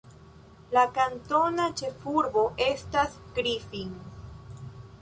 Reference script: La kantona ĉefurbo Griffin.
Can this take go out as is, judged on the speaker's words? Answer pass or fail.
fail